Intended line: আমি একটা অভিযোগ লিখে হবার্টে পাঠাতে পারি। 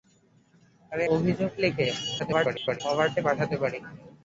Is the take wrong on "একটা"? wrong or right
wrong